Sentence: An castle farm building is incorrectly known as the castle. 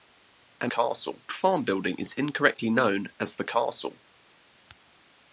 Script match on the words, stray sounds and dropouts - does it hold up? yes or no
yes